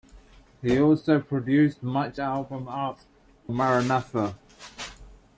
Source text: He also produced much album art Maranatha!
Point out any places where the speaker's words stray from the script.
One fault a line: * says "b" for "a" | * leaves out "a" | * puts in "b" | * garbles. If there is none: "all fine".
all fine